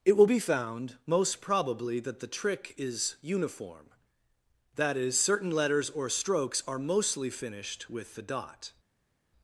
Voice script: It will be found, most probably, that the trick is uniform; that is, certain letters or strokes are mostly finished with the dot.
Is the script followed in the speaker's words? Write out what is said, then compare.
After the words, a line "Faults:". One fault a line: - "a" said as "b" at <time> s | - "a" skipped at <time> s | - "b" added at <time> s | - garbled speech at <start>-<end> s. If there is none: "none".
It will be found, most probably, that the trick is uniform; that is, certain letters or strokes are mostly finished with the dot.
Faults:
none